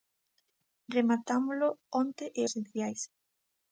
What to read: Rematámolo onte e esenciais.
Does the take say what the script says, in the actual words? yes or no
yes